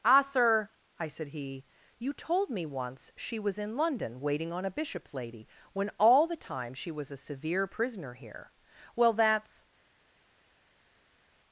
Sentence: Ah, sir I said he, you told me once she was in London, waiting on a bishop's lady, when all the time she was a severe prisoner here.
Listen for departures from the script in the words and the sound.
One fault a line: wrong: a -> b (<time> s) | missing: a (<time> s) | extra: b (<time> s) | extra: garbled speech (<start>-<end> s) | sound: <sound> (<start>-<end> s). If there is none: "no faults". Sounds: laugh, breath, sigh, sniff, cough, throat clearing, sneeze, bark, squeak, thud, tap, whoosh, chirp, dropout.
extra: Well that's (9.0 s)